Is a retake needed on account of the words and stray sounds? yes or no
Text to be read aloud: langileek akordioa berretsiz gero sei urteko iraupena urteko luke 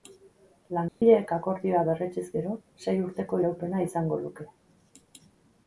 yes